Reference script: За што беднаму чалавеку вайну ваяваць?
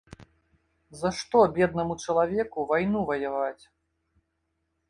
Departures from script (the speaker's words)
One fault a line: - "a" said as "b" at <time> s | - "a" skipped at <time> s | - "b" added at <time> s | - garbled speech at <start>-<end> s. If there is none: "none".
none